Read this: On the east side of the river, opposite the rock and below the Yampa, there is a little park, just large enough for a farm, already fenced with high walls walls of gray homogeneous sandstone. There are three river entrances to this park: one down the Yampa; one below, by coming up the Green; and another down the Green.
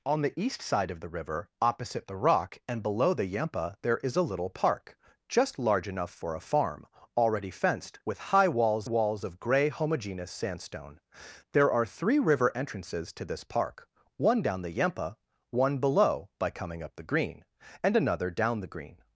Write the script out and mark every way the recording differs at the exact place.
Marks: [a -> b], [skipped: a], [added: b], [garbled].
On the east side of the river, opposite the rock and below the Yampa, there is a little park, just large enough for a farm, already fenced with high walls walls of gray homogeneous sandstone. There are three river entrances to this park: one down the Yampa; one below, by coming up the Green; and another down the Green.